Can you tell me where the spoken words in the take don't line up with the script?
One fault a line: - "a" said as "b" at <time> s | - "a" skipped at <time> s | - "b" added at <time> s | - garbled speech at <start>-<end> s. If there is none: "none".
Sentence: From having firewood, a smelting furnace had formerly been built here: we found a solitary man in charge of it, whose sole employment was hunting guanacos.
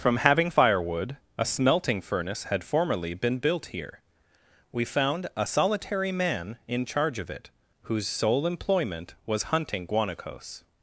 none